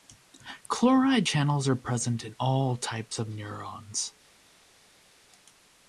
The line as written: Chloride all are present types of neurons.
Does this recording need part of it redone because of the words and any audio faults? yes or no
yes